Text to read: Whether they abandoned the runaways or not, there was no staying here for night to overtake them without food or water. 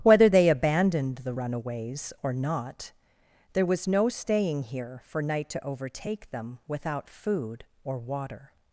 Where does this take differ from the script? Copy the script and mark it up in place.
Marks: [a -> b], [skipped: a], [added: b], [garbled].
Whether they abandoned the runaways or not, there was no staying here for night to overtake them without food or water.